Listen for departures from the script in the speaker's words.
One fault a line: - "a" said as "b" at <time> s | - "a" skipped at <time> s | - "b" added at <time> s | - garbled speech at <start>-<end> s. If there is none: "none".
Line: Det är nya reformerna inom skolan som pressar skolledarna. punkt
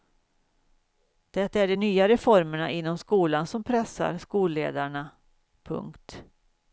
- "de" added at 1.7 s